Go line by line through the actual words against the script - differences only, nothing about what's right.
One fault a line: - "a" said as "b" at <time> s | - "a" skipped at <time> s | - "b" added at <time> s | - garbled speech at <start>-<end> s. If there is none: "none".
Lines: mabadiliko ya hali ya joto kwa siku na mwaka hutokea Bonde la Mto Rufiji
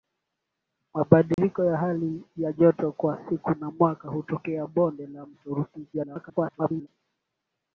- garbled speech at 5.9-6.9 s